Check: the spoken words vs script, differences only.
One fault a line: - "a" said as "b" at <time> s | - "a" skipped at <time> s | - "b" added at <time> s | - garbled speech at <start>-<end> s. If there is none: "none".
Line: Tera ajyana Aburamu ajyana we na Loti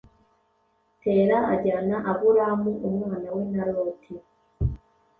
- "ajyana" said as "umwana" at 2.9 s